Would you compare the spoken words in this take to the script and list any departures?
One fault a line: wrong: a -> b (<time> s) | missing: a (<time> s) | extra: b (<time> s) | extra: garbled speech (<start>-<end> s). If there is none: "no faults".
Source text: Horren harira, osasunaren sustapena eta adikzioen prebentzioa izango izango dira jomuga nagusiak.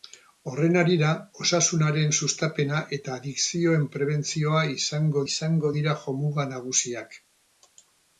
no faults